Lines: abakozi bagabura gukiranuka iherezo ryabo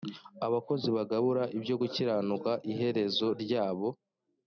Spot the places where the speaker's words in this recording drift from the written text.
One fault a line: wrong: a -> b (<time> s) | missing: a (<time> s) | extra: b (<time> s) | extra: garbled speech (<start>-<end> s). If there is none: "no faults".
extra: ibyo (1.6 s)